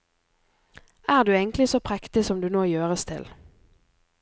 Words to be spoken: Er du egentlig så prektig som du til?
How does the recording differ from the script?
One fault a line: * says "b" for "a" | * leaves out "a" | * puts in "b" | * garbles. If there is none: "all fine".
* puts in "nå gjøres"